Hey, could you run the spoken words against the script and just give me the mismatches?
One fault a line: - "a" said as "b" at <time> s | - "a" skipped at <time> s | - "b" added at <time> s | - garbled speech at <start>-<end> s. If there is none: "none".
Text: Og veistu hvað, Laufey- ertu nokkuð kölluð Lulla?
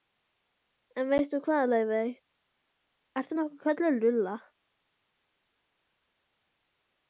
- "Og" said as "En" at 1.0 s